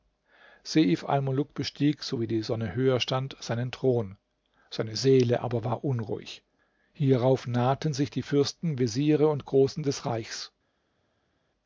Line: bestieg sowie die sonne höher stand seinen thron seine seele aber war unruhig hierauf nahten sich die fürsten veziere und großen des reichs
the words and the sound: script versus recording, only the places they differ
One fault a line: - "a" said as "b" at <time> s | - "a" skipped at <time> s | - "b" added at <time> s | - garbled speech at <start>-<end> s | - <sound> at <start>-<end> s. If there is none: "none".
none